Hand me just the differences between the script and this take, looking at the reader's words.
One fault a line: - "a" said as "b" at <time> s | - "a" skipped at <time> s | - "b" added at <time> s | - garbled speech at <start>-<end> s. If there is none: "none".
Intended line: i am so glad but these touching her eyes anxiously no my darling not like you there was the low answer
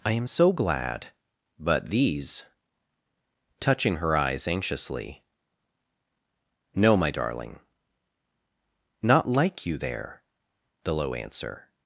- "was" skipped at 10.2 s